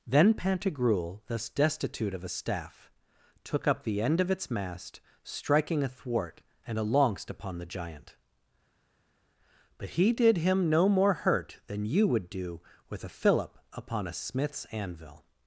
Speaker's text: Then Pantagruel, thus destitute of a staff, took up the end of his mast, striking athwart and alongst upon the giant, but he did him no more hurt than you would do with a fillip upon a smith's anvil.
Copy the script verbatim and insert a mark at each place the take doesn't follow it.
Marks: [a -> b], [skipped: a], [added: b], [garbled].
Then Pantagruel, thus destitute of a staff, took up the end of [his -> its] mast, striking athwart and alongst upon the giant, but he did him no more hurt than you would do with a fillip upon a smith's anvil.